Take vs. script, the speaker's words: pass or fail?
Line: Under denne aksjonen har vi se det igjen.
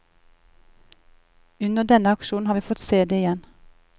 fail